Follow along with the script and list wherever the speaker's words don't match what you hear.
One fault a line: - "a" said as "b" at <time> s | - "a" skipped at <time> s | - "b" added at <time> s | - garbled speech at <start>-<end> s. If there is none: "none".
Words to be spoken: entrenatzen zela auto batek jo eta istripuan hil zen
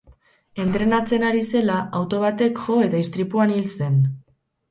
- "ari" added at 1.3 s